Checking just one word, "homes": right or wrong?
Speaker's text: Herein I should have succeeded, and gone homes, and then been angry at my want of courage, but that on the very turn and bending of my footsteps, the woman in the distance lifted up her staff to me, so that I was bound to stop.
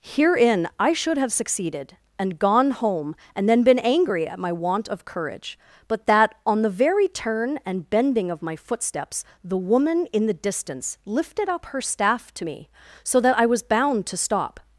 wrong